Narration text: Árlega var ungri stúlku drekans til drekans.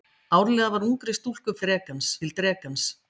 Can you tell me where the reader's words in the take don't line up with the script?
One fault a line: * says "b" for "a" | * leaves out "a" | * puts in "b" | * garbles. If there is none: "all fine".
all fine